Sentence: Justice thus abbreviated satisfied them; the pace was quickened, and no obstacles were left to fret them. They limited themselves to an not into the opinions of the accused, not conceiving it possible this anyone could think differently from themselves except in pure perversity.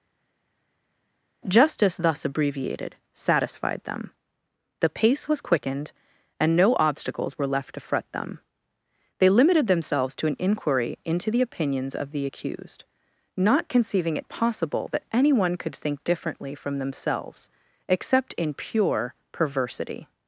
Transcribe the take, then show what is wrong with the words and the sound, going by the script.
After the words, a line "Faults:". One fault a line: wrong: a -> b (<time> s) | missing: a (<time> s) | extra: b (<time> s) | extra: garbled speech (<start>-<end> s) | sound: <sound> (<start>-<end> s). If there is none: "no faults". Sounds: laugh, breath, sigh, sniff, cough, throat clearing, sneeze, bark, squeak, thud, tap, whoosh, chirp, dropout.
Justice thus abbreviated satisfied them; the pace was quickened, and no obstacles were left to fret them. They limited themselves to an inquiry into the opinions of the accused, not conceiving it possible that anyone could think differently from themselves except in pure perversity.
Faults:
wrong: not -> inquiry (10.4 s)
wrong: this -> that (14.9 s)